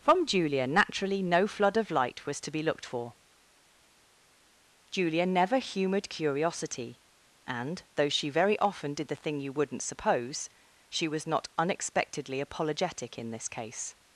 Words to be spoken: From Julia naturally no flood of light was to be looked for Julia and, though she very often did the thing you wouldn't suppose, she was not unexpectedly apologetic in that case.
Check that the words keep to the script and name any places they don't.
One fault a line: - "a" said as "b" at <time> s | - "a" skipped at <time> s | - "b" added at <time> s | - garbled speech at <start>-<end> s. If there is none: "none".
- "never humoured curiosity" added at 5.3 s
- "that" said as "this" at 13.3 s